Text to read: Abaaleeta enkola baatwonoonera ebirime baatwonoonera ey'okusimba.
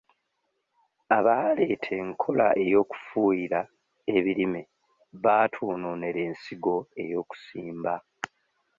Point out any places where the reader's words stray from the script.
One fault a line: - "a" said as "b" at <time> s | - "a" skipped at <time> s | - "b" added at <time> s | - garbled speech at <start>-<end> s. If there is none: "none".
- "baatwonoonera" said as "ey'okufuuyira" at 2.6 s
- "ensigo" added at 6.3 s